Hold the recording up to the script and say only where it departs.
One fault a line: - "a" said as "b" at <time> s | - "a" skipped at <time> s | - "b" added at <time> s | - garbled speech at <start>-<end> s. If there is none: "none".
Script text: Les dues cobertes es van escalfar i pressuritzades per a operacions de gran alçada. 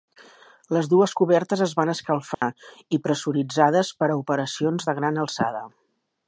none